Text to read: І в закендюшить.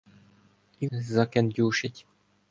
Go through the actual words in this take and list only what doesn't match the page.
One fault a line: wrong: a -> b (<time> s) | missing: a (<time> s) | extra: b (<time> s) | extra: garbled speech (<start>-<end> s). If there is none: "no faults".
no faults